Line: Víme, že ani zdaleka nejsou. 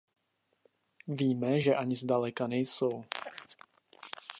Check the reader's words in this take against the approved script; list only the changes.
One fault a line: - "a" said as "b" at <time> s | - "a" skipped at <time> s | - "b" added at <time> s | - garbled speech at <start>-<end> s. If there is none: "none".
none